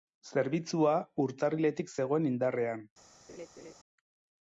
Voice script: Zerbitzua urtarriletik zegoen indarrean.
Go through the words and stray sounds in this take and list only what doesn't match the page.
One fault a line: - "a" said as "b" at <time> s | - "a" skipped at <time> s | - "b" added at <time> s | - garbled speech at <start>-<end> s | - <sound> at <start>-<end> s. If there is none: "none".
- laugh at 3.3-3.7 s